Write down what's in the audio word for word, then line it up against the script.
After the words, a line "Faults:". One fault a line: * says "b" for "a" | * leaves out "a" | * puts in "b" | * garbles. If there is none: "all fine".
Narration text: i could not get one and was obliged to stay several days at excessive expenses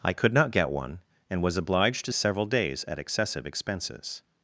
i could not get one and was obliged to several days at excessive expenses
Faults:
* leaves out "stay"